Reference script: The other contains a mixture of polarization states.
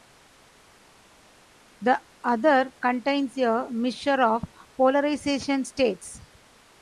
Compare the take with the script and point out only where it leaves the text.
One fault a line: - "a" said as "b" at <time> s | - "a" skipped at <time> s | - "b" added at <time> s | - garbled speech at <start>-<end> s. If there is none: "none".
none